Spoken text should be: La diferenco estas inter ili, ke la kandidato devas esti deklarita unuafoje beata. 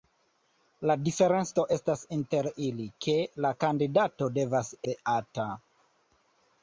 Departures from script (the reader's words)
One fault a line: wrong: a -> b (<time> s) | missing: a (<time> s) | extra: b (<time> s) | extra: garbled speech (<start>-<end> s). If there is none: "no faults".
missing: esti deklarita unuafoje (4.7 s)